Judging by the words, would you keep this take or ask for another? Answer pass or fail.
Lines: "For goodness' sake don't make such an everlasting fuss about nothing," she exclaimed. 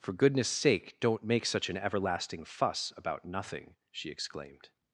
pass